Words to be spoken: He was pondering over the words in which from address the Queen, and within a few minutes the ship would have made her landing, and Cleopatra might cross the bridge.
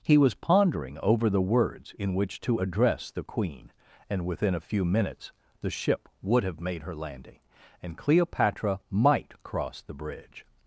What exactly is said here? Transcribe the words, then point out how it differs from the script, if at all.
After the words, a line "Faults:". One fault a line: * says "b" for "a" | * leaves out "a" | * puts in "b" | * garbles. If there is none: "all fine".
He was pondering over the words in which to address the Queen, and within a few minutes the ship would have made her landing, and Cleopatra might cross the bridge.
Faults:
* says "to" for "from"